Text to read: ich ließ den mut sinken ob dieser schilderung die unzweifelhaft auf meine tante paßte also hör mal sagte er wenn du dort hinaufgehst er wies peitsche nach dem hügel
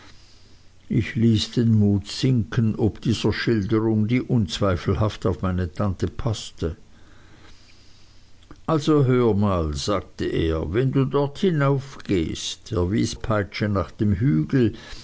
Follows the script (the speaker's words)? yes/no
yes